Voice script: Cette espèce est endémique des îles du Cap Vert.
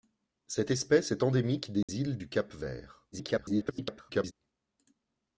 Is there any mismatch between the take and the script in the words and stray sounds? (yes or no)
yes